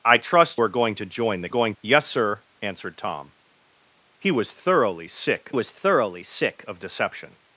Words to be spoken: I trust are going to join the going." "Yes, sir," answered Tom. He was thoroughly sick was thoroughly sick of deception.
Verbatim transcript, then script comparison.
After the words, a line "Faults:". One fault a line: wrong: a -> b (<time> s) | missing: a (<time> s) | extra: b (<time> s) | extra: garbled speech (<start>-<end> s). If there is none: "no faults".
I trust are going to join the going." "Yes, sir," answered Tom. He was thoroughly sick was thoroughly sick of deception.
Faults:
no faults